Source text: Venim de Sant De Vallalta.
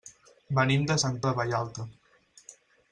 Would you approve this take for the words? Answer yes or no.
yes